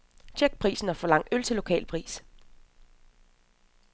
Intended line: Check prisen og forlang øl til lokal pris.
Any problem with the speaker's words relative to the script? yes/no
no